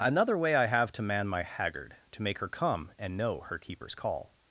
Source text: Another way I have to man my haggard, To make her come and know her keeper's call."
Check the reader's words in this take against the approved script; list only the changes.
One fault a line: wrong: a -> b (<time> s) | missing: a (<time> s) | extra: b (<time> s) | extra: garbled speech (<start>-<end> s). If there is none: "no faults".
no faults